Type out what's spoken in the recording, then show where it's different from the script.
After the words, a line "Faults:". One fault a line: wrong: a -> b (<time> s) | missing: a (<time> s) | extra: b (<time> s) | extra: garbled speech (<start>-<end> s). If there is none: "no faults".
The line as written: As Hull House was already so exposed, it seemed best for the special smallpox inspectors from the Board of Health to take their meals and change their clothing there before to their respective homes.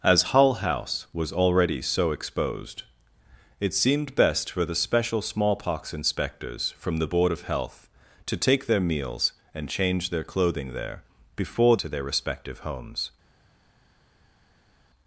As Hull House was already so exposed, it seemed best for the special smallpox inspectors from the Board of Health to take their meals and change their clothing there before to their respective homes.
Faults:
no faults